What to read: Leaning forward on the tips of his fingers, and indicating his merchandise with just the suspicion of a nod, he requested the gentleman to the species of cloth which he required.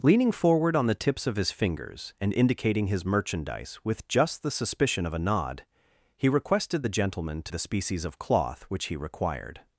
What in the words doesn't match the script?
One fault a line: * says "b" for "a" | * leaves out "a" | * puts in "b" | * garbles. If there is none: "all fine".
all fine